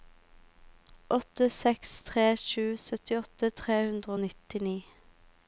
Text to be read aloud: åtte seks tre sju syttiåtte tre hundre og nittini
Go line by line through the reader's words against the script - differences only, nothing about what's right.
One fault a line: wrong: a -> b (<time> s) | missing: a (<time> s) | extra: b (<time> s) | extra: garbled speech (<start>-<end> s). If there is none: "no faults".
no faults